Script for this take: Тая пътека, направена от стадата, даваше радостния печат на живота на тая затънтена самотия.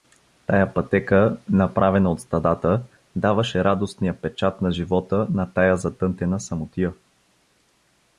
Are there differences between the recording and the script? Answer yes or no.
no